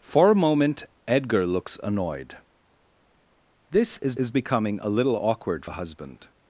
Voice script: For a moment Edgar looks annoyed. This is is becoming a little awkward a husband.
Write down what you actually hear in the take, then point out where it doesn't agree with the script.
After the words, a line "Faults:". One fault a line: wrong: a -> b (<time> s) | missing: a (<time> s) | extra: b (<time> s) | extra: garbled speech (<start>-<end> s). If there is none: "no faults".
For a moment Edgar looks annoyed. This is is becoming a little awkward a husband.
Faults:
no faults